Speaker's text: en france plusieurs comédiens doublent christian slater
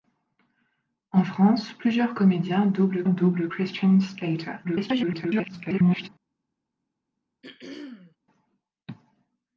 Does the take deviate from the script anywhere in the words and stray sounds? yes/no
yes